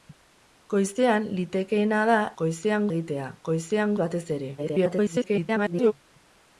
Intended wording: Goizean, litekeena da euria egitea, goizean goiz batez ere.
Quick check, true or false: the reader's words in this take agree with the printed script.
false